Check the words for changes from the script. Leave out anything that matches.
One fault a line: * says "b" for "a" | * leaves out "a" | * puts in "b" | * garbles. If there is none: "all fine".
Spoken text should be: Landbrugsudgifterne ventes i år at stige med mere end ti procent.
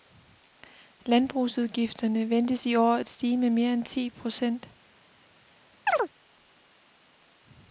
all fine